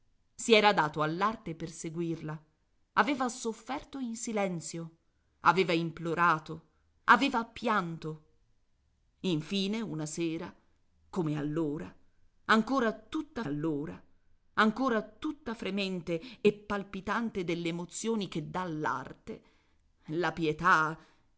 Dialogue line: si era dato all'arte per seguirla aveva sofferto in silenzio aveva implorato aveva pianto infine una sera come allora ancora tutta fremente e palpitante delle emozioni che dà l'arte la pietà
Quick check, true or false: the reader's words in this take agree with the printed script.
false